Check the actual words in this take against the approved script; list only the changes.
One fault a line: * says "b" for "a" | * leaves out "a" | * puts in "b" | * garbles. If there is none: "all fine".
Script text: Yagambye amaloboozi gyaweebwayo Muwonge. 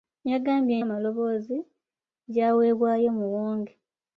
all fine